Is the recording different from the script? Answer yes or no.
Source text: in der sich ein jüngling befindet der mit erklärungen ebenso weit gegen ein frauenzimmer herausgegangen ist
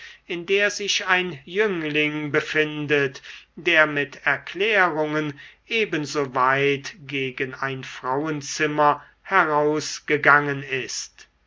no